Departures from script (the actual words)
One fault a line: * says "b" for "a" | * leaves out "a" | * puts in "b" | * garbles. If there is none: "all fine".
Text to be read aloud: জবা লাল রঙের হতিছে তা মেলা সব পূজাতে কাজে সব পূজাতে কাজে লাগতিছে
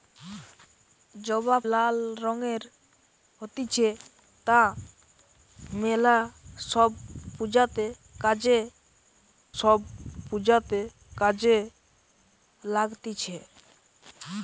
all fine